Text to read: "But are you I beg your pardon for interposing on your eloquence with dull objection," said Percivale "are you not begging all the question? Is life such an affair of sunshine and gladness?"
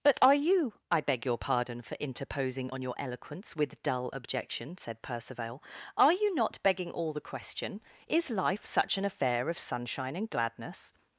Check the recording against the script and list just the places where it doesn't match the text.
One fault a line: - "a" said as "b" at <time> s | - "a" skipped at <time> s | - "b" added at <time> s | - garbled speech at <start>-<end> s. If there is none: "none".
none